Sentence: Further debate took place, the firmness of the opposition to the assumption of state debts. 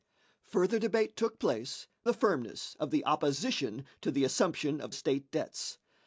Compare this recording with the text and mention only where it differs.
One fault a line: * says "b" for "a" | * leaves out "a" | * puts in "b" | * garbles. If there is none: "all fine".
all fine